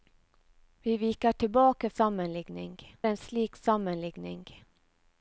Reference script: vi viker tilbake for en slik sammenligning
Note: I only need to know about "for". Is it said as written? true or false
false